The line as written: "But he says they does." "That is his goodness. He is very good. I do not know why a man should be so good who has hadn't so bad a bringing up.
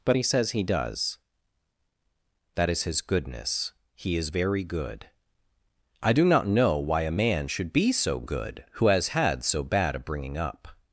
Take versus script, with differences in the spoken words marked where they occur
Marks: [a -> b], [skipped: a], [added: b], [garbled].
"But he says [they -> he] does." "That is his goodness. He is very good. I do not know why a man should be so good who has [hadn't -> had] so bad a bringing up.